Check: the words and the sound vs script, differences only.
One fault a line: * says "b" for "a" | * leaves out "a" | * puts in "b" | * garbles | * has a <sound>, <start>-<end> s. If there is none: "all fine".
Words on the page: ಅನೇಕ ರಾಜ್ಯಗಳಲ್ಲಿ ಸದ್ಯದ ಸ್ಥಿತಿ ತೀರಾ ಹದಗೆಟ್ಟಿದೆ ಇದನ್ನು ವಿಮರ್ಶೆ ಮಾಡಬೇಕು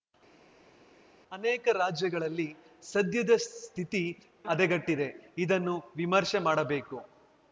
* leaves out "ತೀರಾ"